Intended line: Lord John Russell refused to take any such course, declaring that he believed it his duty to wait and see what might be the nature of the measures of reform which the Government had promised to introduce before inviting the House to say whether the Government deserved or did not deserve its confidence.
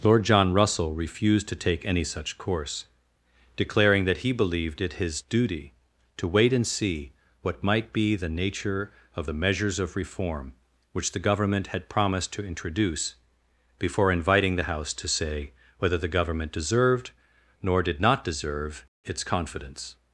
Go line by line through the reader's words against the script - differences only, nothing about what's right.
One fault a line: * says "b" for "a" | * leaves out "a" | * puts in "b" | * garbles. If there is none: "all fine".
* says "nor" for "or"